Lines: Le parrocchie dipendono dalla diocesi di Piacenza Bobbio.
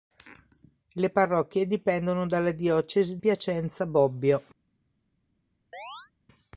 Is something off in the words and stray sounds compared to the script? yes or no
yes